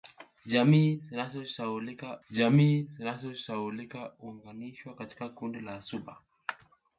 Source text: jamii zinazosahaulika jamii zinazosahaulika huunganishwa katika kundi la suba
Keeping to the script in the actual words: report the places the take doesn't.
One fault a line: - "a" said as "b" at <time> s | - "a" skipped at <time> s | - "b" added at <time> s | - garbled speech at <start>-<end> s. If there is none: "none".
none